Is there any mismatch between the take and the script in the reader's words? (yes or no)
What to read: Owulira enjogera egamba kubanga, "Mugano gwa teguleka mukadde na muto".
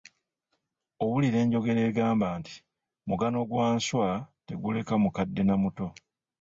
yes